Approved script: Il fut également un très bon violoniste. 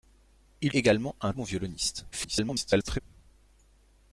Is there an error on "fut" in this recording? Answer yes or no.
yes